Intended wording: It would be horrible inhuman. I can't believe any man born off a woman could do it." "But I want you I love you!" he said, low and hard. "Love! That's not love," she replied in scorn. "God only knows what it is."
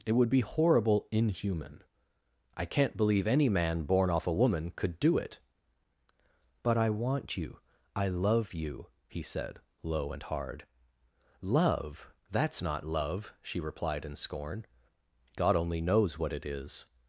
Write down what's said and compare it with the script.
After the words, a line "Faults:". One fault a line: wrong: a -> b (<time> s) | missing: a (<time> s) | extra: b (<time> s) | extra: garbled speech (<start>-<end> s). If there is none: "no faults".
It would be horrible inhuman. I can't believe any man born off a woman could do it." "But I want you I love you!" he said, low and hard. "Love! That's not love," she replied in scorn. "God only knows what it is."
Faults:
no faults